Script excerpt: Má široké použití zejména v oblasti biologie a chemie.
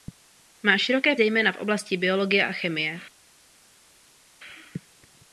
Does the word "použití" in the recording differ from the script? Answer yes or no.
yes